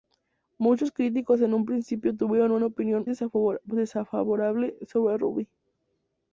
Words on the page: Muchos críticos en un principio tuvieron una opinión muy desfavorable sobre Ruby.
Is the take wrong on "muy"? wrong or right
wrong